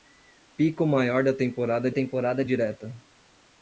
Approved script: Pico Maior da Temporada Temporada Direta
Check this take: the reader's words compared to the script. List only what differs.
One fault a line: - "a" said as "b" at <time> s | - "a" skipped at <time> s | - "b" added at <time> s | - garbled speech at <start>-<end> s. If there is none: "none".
none